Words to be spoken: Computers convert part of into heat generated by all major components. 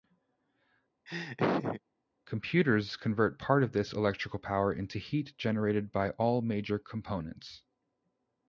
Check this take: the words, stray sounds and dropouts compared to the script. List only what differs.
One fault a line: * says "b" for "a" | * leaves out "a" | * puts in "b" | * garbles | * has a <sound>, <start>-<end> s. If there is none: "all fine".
* has a laugh, 1.1-1.8 s
* puts in "this electrical power"